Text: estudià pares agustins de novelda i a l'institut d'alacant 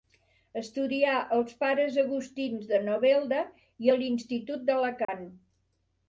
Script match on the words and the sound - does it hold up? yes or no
no